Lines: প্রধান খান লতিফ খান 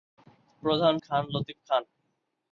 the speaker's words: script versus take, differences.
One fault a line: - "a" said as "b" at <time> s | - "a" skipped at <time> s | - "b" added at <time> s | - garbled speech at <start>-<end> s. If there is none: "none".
none